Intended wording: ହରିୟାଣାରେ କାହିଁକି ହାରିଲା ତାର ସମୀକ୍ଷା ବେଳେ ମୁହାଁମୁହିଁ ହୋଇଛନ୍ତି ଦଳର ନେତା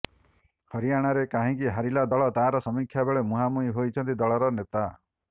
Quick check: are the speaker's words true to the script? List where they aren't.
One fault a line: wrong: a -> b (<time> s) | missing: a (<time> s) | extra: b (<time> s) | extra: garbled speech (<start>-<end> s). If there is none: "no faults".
extra: ଦଳ (2.1 s)